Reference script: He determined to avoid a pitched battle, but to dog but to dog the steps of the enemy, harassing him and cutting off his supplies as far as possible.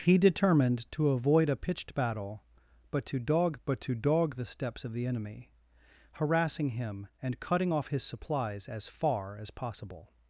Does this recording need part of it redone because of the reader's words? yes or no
no